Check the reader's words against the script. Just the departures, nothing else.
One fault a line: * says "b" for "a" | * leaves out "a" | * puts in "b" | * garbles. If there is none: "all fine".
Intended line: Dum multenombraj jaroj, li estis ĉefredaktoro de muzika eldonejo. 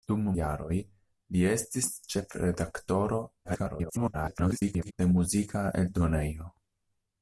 * leaves out "multenombraj"
* garbles